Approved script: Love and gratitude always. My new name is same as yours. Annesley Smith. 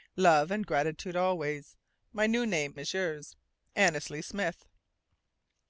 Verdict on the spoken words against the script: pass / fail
fail